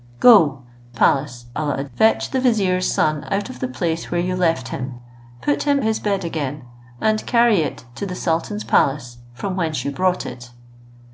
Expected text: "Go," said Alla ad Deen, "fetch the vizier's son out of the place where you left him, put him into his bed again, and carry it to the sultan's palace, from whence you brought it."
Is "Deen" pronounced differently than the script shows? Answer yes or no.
yes